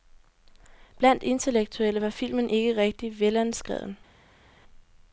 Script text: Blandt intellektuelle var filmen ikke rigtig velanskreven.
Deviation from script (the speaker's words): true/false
false